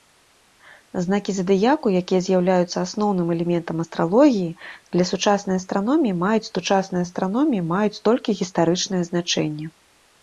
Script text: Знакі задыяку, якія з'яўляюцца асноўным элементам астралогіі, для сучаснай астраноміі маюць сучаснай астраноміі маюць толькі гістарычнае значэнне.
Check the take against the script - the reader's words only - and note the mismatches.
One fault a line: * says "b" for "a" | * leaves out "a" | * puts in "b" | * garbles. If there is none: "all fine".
all fine